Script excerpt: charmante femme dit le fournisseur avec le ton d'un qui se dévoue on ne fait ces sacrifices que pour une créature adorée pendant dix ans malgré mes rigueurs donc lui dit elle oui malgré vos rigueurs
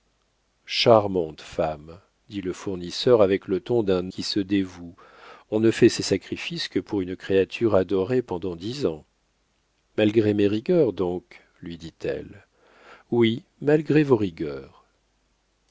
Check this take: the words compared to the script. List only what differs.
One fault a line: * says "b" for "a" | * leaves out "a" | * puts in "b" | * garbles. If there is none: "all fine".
all fine